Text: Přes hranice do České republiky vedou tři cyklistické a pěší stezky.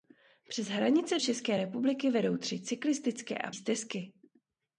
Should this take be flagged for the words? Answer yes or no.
yes